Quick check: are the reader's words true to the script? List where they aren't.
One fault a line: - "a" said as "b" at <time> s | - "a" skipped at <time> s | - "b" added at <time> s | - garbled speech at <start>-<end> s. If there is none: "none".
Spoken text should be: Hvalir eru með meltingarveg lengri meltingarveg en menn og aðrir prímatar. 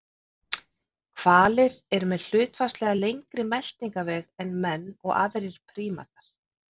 - "meltingarveg" said as "hlutfallslega" at 2.3 s